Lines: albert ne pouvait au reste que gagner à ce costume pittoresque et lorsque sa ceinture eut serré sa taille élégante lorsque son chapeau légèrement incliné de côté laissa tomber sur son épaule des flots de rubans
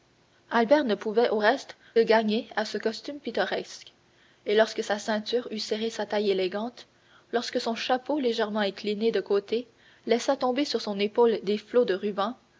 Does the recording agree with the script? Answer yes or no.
no